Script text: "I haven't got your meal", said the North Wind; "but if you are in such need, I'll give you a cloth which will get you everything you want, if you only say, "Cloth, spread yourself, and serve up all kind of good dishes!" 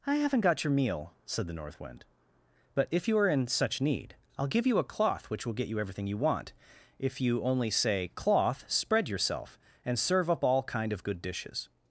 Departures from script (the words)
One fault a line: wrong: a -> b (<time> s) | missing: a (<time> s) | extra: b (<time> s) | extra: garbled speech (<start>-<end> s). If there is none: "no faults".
no faults